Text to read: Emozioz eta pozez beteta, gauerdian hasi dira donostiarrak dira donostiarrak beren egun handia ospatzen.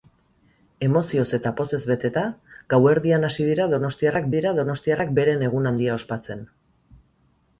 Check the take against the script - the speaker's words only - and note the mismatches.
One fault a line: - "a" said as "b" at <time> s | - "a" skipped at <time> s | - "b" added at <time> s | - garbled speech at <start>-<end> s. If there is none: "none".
none